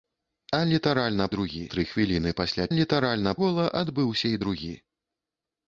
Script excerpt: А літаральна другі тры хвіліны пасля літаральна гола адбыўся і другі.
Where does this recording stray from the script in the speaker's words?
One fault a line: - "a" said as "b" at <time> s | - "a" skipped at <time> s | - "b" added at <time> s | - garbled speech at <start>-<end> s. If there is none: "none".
none